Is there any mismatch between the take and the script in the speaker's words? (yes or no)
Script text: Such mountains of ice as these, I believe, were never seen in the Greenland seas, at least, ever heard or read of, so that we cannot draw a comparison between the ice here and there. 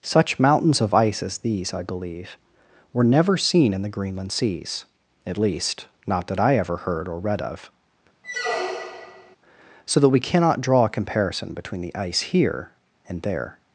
yes